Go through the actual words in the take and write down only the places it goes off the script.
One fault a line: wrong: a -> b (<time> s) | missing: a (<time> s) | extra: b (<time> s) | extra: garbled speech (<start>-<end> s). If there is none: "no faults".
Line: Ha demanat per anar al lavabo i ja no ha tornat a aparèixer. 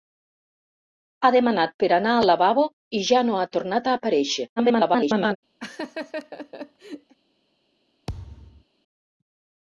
extra: garbled speech (4.6-5.4 s)